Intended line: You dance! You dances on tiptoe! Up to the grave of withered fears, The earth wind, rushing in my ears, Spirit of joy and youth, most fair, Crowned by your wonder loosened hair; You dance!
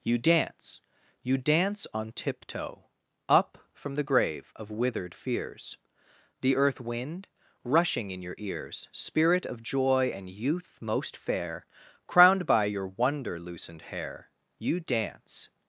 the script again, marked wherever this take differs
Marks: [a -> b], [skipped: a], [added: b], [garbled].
You dance! You [dances -> dance] on tiptoe! Up [to -> from] the grave of withered fears, The earth wind, rushing in [my -> your] ears, Spirit of joy and youth, most fair, Crowned by your wonder loosened hair; You dance!